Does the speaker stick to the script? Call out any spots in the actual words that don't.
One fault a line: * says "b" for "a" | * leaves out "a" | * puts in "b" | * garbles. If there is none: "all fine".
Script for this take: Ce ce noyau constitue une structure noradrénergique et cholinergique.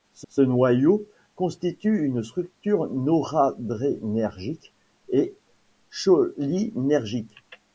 all fine